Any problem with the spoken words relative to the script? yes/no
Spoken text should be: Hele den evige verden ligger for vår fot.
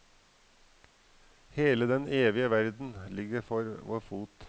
no